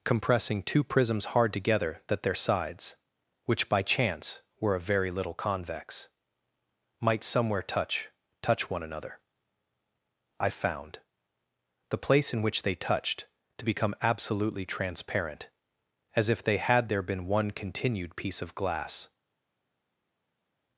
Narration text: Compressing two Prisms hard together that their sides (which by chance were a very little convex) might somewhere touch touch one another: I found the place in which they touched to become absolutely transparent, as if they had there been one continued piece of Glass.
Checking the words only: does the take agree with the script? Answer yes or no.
yes